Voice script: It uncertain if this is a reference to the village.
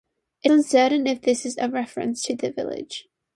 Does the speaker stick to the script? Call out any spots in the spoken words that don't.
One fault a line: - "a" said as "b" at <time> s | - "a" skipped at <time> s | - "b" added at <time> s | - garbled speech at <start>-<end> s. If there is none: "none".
none